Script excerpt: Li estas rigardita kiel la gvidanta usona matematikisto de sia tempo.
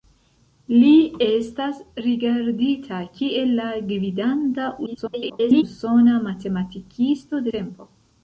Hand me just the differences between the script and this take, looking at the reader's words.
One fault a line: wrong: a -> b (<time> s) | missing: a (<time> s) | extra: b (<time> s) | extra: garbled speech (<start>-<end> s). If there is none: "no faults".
extra: garbled speech (4.9-5.6 s)
missing: de sia (7.5 s)